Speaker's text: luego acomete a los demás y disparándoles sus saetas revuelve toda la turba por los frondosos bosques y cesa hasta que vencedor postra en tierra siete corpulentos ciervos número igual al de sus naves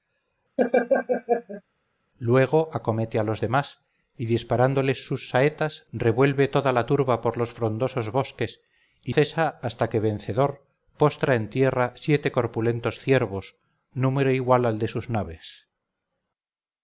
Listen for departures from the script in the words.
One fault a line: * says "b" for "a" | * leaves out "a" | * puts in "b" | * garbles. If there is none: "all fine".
all fine